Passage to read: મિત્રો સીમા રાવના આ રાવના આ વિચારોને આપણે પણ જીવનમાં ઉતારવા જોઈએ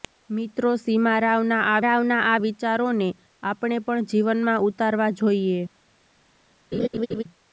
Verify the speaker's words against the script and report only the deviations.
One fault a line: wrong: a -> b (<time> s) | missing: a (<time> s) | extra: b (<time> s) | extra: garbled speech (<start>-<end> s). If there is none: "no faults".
no faults